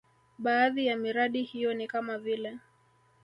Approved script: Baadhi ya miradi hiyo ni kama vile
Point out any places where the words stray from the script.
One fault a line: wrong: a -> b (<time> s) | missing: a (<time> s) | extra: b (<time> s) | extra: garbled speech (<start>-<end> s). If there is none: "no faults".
no faults